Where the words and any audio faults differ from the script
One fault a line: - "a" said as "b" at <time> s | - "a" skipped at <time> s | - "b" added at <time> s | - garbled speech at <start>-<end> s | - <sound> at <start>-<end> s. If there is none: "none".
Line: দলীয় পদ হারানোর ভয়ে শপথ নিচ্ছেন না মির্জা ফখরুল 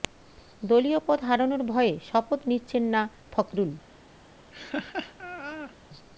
- "মির্জা" skipped at 3.0 s
- laugh at 4.5-5.7 s